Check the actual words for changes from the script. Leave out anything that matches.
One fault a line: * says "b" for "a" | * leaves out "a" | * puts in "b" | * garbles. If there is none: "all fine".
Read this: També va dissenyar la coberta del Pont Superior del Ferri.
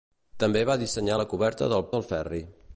* leaves out "Pont Superior"